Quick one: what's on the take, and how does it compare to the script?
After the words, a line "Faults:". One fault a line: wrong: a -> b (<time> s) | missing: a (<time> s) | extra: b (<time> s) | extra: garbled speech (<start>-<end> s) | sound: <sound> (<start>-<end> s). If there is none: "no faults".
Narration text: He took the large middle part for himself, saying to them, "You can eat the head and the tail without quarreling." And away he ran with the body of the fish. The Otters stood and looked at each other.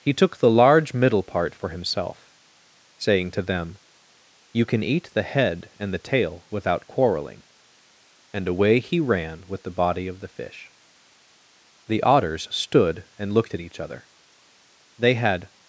He took the large middle part for himself, saying to them, "You can eat the head and the tail without quarreling." And away he ran with the body of the fish. The Otters stood and looked at each other. They had
Faults:
extra: They had (15.0 s)